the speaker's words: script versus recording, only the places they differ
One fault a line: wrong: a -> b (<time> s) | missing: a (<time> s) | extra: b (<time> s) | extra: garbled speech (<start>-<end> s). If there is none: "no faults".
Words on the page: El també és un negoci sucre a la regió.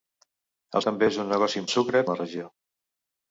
no faults